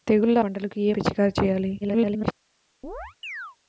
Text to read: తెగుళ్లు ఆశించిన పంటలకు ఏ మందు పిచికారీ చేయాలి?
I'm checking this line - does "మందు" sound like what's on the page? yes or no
no